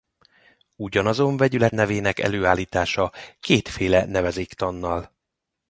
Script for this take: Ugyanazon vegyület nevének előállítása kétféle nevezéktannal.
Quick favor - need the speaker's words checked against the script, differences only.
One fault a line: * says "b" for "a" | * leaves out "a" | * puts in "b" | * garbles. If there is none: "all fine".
all fine